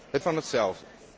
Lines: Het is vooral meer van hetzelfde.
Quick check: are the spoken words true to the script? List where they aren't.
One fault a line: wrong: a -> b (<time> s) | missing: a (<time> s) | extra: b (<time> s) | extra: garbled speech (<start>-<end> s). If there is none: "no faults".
missing: is vooral meer (0.2 s)